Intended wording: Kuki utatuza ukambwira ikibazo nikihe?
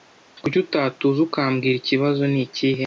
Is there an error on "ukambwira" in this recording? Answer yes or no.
no